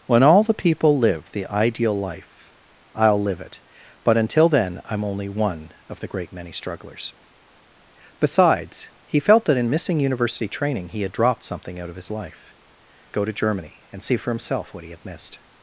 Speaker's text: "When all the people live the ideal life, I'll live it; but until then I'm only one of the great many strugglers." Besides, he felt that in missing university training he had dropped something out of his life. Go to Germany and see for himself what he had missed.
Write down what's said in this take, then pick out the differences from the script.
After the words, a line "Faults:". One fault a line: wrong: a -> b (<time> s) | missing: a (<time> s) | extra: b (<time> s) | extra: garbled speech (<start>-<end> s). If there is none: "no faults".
"When all the people live the ideal life, I'll live it; but until then I'm only one of the great many strugglers." Besides, he felt that in missing university training he had dropped something out of his life. Go to Germany and see for himself what he had missed.
Faults:
no faults